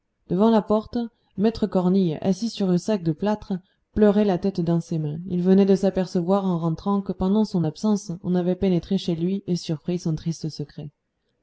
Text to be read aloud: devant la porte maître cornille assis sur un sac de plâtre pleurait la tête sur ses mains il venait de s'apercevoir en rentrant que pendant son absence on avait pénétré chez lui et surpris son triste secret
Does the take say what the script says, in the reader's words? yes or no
no